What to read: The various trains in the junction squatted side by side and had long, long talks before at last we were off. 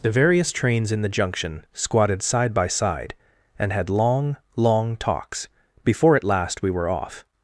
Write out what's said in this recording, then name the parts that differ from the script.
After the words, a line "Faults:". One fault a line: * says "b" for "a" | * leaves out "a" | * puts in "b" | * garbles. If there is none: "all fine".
The various trains in the junction squatted side by side and had long, long talks before at last we were off.
Faults:
all fine